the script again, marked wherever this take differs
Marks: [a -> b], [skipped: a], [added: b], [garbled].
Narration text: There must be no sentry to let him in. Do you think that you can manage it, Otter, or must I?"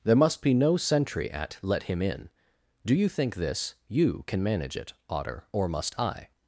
There must be no sentry [to -> at] let him in. Do you think [that -> this] you can manage it, Otter, or must I?"